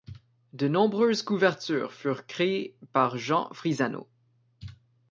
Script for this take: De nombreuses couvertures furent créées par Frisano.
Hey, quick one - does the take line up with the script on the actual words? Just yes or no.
no